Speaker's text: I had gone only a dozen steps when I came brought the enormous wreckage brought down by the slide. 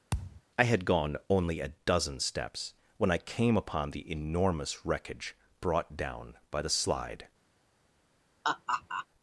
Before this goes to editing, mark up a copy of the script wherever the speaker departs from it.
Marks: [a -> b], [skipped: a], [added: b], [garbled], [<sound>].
[thud] I had gone only a dozen steps when I came [brought -> upon] the enormous wreckage brought down by the slide. [laugh]